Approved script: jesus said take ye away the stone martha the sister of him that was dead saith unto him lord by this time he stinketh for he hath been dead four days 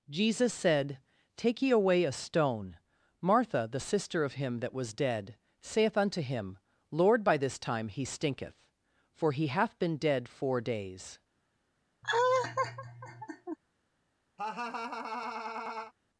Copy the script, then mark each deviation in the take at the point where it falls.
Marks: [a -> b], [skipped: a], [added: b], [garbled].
jesus said take ye away [the -> a] stone martha the sister of him that was dead saith unto him lord by this time he stinketh for he hath been dead four days